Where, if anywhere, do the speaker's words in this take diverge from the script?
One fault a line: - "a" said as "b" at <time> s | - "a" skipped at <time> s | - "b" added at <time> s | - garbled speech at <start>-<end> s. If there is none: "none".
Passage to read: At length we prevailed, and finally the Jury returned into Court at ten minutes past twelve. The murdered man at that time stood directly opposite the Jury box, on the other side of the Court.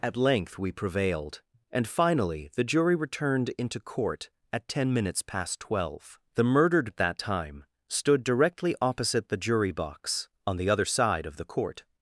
- "man" skipped at 6.9 s